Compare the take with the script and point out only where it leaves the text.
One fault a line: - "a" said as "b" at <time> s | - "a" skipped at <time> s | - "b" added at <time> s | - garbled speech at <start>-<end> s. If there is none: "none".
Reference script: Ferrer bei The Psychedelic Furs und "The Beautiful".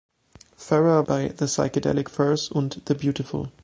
none